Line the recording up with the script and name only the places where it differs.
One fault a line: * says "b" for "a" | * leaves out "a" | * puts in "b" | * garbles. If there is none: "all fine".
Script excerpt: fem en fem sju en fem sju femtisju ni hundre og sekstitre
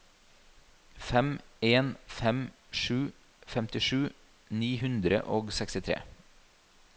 * leaves out "en fem sju"